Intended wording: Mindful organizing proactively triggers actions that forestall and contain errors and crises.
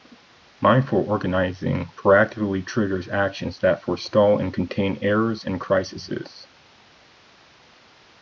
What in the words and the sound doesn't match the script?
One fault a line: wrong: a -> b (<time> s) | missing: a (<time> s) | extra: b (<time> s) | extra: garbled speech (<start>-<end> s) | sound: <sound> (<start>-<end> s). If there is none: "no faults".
no faults